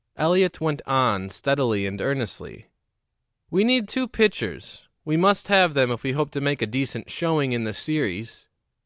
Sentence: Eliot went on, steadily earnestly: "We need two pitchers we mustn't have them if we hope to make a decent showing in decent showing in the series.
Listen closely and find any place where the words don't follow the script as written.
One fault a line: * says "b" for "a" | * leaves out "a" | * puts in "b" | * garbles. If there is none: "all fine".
* puts in "and"
* says "must" for "mustn't"
* leaves out "decent showing in"